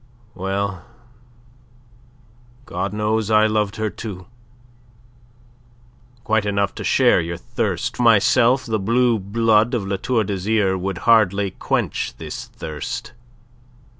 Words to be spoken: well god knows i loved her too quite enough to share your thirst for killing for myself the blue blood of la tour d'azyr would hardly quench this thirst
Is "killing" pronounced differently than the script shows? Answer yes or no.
yes